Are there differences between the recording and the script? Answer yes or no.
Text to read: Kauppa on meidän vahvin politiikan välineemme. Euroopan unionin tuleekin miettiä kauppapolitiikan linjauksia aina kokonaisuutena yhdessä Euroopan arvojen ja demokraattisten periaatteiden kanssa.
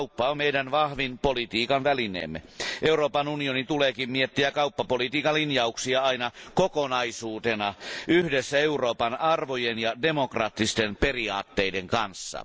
no